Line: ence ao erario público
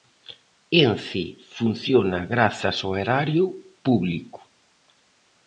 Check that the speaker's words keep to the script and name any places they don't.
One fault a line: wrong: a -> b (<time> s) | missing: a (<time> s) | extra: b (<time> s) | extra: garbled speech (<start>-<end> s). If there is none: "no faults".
extra: funciona grazas (1.6 s)